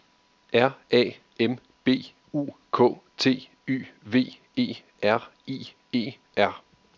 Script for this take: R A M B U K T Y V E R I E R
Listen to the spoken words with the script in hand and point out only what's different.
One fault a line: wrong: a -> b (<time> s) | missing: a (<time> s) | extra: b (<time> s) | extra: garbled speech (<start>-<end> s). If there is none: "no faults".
no faults